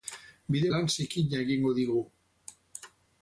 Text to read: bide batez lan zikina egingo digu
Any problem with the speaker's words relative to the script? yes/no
yes